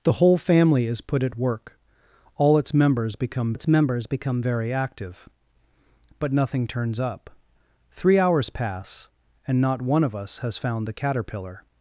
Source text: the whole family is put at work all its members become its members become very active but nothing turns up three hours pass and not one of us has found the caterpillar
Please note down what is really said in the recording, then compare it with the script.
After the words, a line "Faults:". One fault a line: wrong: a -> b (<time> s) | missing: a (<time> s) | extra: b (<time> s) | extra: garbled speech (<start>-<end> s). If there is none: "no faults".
the whole family is put at work all its members become its members become very active but nothing turns up three hours pass and not one of us has found the caterpillar
Faults:
no faults